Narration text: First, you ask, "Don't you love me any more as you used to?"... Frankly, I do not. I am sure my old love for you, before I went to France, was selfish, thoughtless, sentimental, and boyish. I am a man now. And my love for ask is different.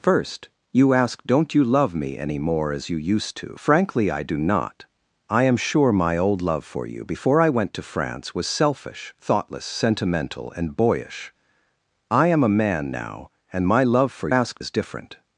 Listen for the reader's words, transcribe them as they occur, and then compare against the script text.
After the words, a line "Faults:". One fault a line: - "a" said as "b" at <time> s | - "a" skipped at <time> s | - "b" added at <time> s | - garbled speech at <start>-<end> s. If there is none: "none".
First, you ask, "Don't you love me any more as you used to?"... Frankly, I do not. I am sure my old love for you, before I went to France, was selfish, thoughtless, sentimental, and boyish. I am a man now. And my love for ask is different.
Faults:
none